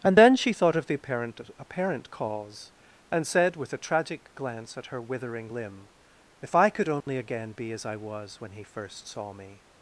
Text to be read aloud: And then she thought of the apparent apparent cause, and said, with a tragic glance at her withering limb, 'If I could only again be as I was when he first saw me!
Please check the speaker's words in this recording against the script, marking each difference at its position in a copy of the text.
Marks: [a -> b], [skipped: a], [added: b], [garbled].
And then she thought of the apparent apparent cause, and said, with a tragic glance at her withering limb, 'If I could only again be as I was when he first saw me!